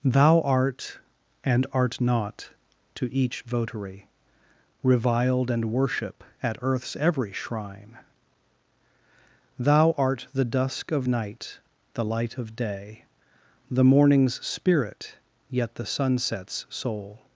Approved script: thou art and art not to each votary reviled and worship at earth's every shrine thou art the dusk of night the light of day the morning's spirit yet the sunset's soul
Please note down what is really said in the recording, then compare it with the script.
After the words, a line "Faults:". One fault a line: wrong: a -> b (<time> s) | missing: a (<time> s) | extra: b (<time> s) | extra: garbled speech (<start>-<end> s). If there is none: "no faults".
thou art and art not to each votary reviled and worship at earth's every shrine thou art the dusk of night the light of day the morning's spirit yet the sunset's soul
Faults:
no faults